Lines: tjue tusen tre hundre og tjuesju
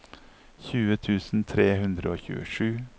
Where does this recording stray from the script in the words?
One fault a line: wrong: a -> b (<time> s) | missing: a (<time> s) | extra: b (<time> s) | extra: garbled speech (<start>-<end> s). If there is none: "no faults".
no faults